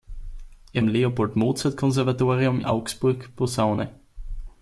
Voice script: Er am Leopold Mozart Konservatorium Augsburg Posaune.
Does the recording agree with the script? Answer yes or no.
yes